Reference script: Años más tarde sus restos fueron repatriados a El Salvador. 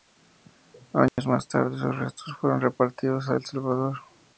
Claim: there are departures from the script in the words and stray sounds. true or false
true